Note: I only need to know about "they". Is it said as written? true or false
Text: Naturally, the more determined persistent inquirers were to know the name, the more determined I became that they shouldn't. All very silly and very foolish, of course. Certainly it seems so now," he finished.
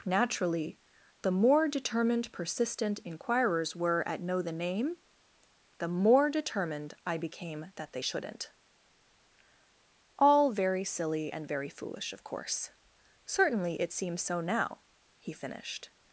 true